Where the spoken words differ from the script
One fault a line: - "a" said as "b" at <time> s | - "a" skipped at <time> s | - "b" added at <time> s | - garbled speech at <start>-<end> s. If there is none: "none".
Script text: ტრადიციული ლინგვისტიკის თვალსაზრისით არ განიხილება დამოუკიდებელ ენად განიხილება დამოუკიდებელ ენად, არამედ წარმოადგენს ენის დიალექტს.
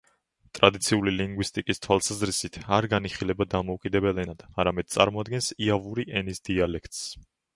- "განიხილება დამოუკიდებელ ენად" skipped at 4.5 s
- "იავური" added at 5.7 s